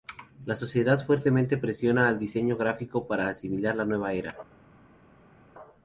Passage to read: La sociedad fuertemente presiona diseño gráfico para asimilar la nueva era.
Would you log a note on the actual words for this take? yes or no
yes